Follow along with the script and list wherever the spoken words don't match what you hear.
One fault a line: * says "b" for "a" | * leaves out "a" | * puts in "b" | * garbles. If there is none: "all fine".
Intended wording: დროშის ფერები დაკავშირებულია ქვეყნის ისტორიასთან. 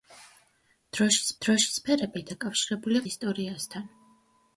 * puts in "დროშის"
* leaves out "ქვეყნის"